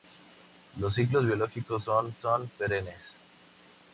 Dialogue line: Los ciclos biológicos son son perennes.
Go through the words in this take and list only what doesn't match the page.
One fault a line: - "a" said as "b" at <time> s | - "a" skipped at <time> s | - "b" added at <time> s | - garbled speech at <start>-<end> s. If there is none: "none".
none